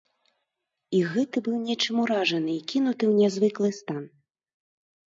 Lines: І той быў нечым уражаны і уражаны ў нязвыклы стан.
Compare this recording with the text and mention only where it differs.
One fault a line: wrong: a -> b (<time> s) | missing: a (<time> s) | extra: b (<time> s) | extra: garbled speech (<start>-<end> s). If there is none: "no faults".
wrong: той -> гэты (1.1 s)
wrong: уражаны -> кінуты (2.7 s)